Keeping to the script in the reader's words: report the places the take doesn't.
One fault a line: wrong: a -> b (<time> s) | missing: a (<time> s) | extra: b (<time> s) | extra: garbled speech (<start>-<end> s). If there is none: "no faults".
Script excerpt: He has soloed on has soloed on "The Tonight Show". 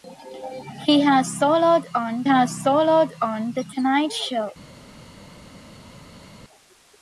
no faults